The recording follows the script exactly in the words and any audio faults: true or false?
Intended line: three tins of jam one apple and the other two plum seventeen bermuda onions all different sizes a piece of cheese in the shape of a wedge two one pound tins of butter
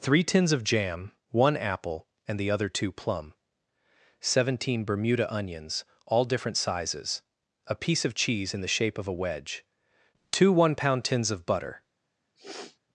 false